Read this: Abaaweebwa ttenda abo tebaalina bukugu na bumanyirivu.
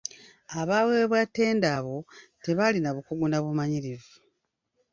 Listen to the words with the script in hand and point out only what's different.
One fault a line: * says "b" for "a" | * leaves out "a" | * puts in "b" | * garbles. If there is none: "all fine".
all fine